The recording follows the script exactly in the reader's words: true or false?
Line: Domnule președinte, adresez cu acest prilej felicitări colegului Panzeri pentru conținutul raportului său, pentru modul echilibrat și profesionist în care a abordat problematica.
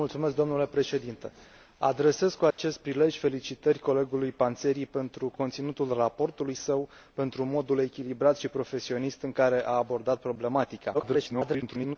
false